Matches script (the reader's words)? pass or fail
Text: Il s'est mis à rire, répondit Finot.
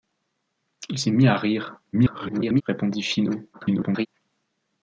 fail